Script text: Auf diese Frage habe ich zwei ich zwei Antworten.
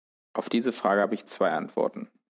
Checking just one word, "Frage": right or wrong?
right